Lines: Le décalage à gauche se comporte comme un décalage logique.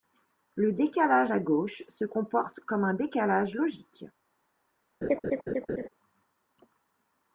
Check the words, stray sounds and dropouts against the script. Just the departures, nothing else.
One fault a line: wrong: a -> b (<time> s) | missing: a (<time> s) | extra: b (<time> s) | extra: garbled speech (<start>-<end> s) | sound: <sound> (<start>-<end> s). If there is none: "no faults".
sound: laugh (5.0-5.9 s)